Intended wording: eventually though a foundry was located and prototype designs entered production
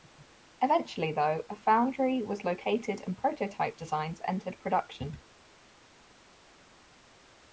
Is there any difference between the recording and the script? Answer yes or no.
no